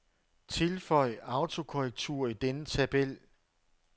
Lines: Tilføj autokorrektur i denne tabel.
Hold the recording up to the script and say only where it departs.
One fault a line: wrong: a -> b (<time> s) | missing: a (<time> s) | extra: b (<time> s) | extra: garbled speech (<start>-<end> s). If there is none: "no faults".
no faults